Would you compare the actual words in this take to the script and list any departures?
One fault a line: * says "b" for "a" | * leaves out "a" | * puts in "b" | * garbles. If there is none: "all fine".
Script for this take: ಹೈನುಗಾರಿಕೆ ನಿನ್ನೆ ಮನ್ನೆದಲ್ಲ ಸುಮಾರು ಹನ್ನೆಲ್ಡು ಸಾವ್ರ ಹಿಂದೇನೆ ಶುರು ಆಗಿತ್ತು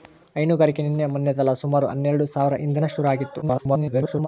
* garbles